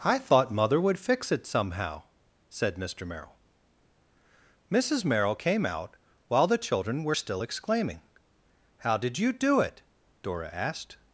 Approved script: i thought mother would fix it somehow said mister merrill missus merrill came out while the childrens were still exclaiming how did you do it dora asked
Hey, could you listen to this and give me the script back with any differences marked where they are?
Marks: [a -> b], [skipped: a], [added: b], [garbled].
i thought mother would fix it somehow said mister merrill missus merrill came out while the [childrens -> children] were still exclaiming how did you do it dora asked